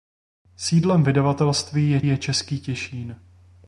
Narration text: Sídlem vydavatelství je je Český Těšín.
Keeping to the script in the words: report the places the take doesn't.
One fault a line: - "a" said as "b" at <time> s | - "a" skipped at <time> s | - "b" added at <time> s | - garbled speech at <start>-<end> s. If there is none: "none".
none